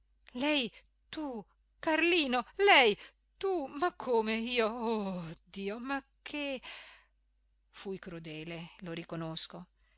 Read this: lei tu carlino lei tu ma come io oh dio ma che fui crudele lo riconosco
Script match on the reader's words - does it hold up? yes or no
yes